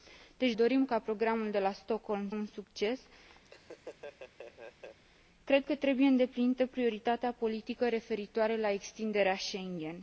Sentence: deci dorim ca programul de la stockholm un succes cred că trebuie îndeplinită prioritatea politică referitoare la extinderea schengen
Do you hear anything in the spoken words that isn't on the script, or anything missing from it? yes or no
no